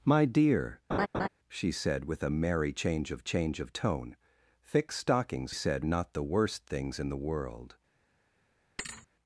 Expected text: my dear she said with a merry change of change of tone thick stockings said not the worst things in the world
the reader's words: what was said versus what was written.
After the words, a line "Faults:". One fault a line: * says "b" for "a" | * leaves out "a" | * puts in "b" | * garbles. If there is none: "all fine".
my dear she said with a merry change of change of tone thick stockings said not the worst things in the world
Faults:
all fine